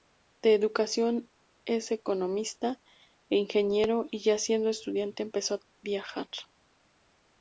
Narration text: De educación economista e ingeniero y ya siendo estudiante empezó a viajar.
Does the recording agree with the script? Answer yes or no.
no